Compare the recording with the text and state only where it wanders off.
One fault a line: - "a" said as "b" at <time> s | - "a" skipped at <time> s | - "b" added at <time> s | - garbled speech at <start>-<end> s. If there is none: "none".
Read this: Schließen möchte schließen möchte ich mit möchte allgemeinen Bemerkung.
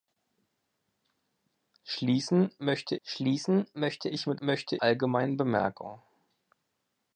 none